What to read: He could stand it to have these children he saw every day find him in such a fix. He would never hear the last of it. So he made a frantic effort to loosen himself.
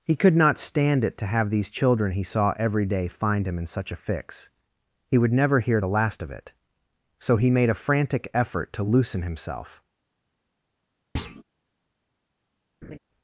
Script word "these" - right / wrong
right